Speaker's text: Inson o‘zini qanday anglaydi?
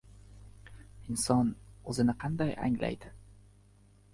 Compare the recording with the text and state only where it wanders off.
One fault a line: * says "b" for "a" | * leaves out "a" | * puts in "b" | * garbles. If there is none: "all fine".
all fine